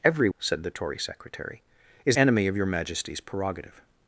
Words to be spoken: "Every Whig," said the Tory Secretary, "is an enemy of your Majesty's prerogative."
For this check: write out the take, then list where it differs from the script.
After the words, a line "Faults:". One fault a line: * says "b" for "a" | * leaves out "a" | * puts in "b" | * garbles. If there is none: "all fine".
"Every," Said the Tory Secretary, "is enemy of your Majesty's prerogative."
Faults:
* leaves out "Whig"
* leaves out "an"